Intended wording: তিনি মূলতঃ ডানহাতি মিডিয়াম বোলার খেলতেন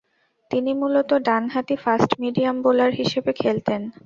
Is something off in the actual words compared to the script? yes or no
yes